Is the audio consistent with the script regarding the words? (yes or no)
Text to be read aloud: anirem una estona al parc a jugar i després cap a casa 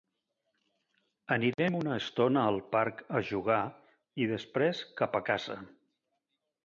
yes